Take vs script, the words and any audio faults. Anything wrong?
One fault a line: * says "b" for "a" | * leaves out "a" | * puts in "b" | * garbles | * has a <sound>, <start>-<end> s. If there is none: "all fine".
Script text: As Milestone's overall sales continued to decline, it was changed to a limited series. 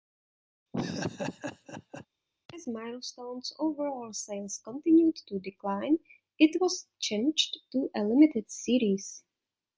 * has a laugh, 0.7-2.1 s